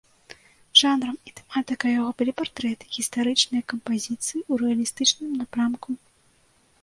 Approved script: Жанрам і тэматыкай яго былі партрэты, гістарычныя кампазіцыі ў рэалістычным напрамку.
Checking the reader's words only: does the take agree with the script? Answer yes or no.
yes